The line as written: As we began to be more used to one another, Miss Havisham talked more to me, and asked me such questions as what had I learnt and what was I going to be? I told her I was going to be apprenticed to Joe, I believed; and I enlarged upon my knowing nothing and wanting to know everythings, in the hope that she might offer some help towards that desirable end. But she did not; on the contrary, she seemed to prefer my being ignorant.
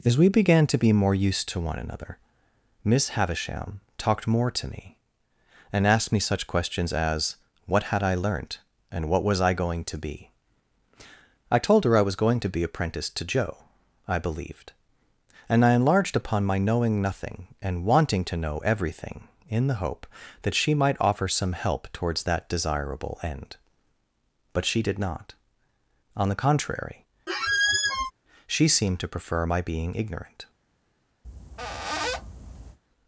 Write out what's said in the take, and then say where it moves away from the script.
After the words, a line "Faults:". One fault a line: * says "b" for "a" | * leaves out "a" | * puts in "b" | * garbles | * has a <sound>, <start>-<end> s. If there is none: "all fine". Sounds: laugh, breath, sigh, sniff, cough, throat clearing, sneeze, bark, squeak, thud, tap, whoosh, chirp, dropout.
As we began to be more used to one another, Miss Havisham talked more to me, and asked me such questions as what had I learnt and what was I going to be? I told her I was going to be apprenticed to Joe, I believed; and I enlarged upon my knowing nothing and wanting to know everything, in the hope that she might offer some help towards that desirable end. But she did not; on the contrary, she seemed to prefer my being ignorant.
Faults:
* says "everything" for "everythings"
* has a squeak, 27.3-28.1 s
* has a squeak, 31.2-32.8 s